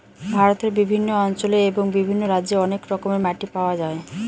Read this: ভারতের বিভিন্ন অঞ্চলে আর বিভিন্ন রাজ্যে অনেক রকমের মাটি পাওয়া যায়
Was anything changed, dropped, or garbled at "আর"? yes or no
yes